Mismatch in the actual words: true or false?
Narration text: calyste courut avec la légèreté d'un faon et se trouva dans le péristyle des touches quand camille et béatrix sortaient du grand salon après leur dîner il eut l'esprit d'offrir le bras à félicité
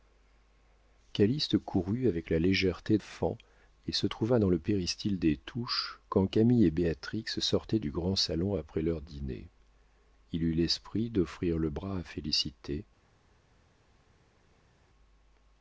true